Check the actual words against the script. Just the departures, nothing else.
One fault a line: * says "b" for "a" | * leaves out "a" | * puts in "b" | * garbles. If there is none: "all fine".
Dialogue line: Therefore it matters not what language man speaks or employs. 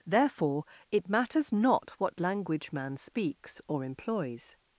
all fine